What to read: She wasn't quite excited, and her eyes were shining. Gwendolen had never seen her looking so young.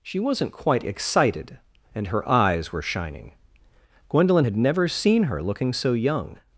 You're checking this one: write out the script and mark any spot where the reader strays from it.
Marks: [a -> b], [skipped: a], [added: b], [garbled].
She wasn't quite excited, and her eyes were shining. Gwendolen had never seen her looking so young.